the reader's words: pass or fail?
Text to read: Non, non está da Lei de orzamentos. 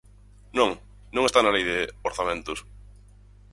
fail